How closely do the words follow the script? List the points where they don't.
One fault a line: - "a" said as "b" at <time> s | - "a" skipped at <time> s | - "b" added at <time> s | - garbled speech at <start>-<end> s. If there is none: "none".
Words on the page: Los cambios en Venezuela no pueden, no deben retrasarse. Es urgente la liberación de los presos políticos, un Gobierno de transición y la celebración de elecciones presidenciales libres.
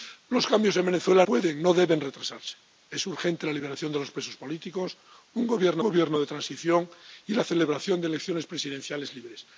- "no" skipped at 1.2 s
- "Gobierno" added at 5.8 s